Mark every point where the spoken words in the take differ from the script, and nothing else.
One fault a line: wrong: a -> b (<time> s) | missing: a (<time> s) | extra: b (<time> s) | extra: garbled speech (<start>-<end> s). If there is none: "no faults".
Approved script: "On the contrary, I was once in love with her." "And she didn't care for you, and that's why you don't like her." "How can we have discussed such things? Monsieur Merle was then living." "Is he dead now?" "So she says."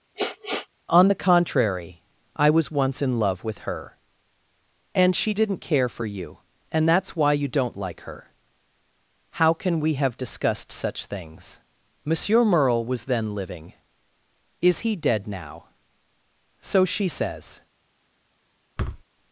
no faults